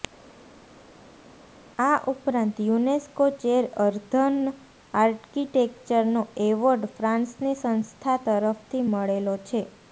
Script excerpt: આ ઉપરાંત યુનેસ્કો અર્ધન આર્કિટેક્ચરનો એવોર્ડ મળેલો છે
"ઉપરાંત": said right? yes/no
yes